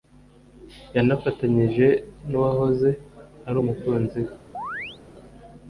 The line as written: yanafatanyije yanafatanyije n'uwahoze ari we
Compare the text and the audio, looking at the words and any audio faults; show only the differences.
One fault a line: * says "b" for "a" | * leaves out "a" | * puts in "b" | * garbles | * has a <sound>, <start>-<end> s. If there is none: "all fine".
* leaves out "yanafatanyije"
* puts in "umukunzi"
* has a chirp, 4.5-5.0 s